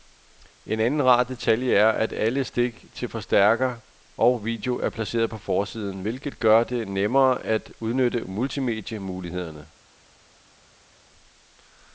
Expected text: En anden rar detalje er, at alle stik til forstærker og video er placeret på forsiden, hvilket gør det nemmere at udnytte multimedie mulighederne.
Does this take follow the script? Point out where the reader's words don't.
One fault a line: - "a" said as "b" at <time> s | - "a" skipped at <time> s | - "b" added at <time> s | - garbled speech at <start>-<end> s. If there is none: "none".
none